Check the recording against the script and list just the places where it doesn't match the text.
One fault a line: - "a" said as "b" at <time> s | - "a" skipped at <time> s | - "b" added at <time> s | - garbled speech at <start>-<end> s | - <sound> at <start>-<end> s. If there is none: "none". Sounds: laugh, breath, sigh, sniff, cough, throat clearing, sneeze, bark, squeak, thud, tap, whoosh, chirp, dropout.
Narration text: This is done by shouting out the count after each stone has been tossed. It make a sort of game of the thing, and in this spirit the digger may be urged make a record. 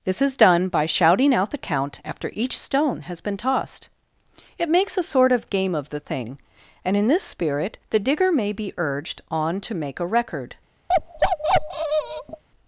- "make" said as "makes" at 4.7 s
- "on to" added at 9.3 s
- bark at 10.9-12.4 s